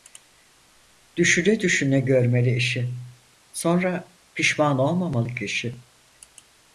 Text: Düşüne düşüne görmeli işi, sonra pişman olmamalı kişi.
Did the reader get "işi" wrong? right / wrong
right